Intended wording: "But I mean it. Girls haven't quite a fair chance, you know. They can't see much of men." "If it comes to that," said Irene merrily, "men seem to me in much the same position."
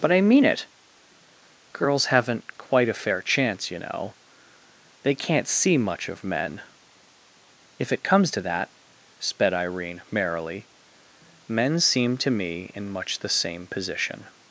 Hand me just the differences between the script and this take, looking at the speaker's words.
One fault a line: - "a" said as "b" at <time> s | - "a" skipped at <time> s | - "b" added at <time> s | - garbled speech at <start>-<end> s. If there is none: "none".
- "said" said as "sped" at 9.2 s